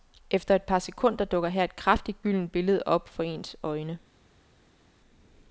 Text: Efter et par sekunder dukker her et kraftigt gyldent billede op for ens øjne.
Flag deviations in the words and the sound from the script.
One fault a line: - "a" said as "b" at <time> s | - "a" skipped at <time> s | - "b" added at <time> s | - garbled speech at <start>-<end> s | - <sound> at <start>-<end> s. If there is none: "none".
none